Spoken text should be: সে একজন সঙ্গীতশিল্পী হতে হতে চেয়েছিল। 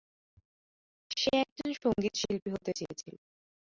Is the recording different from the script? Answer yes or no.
yes